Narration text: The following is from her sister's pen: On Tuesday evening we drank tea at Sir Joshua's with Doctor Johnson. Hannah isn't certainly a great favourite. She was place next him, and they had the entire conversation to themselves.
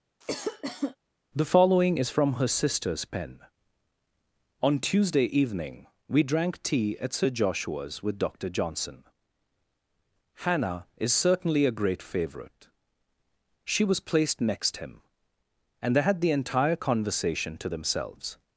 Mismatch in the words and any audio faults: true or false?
true